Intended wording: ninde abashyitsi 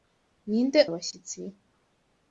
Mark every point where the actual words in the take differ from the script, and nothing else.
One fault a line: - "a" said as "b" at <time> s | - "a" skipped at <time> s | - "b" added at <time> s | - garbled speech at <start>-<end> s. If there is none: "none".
none